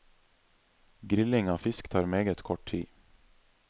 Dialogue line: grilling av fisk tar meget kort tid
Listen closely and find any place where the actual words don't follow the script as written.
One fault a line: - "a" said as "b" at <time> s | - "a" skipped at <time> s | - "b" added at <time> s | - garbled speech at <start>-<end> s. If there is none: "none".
none